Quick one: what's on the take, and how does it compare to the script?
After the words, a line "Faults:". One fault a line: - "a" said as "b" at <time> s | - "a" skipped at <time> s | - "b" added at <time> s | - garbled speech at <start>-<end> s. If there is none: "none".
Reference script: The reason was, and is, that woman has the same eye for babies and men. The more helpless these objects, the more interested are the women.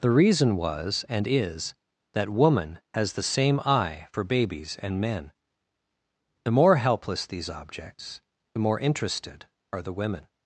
The reason was, and is, that woman has the same eye for babies and men. The more helpless these objects, the more interested are the women.
Faults:
none